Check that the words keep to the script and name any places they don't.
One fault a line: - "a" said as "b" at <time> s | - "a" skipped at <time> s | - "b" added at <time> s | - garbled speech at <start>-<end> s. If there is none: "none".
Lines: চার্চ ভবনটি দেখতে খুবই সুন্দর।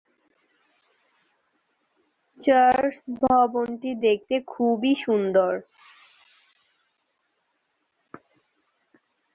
none